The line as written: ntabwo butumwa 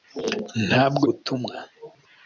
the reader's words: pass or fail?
pass